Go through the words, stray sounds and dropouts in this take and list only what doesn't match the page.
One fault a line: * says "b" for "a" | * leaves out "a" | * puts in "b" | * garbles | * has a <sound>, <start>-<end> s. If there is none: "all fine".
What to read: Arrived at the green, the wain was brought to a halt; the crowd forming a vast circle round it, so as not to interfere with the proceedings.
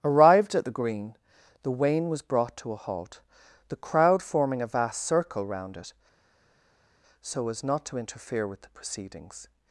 all fine